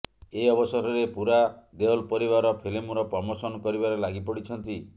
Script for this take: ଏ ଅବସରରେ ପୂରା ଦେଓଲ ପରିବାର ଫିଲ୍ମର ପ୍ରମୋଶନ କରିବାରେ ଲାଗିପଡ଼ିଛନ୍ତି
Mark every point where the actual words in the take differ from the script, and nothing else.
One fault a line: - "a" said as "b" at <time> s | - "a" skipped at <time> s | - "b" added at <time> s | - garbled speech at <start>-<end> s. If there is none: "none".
none